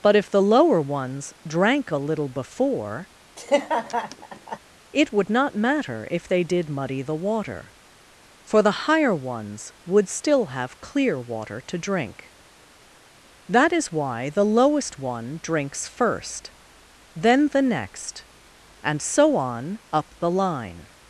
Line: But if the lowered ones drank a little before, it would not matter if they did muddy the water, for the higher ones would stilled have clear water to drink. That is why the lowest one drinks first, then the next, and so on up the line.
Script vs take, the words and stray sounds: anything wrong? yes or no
yes